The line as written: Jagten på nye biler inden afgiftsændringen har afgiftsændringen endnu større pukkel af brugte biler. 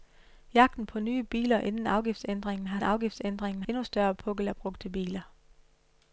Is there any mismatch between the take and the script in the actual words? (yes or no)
no